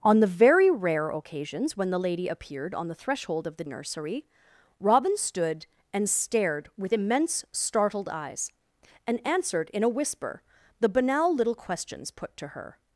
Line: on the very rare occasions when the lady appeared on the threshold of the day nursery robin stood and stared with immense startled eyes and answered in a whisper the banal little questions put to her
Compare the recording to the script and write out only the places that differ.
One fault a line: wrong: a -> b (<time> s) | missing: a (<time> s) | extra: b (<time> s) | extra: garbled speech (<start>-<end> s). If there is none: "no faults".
missing: day (3.6 s)